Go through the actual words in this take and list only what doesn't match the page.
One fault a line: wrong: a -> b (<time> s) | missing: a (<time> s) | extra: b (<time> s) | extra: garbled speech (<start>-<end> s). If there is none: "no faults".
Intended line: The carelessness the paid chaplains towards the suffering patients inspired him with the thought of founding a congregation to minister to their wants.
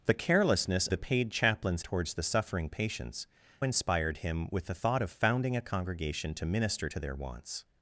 no faults